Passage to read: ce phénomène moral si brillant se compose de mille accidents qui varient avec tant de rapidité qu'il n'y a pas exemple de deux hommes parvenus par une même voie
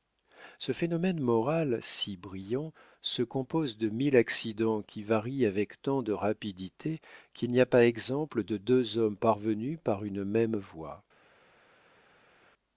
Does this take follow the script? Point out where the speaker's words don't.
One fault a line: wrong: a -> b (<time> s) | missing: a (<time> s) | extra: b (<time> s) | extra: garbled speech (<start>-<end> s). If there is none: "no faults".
no faults